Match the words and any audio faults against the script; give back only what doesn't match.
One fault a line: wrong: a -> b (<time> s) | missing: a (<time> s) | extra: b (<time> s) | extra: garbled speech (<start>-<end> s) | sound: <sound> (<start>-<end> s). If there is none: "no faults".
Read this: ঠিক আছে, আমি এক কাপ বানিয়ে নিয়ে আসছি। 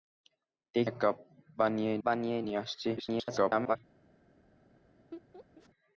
missing: আছে আমি (0.9 s)
extra: বানিয়ে (2.0 s)
extra: garbled speech (3.0-3.8 s)
sound: laugh (5.1-5.7 s)